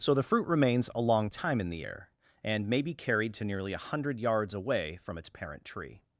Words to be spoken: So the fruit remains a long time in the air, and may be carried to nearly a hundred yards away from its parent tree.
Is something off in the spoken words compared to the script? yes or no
no